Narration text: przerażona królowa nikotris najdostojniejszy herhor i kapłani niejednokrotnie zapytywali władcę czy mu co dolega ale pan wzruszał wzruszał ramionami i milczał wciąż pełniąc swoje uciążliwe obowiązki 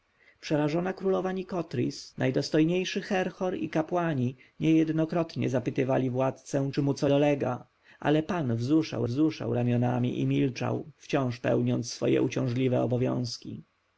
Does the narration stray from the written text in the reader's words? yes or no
no